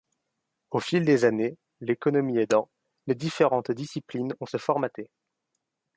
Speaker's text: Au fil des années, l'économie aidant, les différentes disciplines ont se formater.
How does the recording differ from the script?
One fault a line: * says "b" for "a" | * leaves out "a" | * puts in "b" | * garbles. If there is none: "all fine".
all fine